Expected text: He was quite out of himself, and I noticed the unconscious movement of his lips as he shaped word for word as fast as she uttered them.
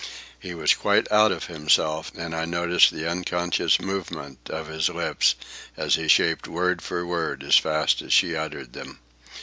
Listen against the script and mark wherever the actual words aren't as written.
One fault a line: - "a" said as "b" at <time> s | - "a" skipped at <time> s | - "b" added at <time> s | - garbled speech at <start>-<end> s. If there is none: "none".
none